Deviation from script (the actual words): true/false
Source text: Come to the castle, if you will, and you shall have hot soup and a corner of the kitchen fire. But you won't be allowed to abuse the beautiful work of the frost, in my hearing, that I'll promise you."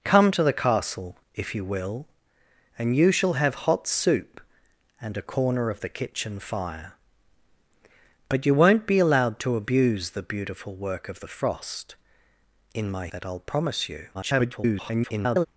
true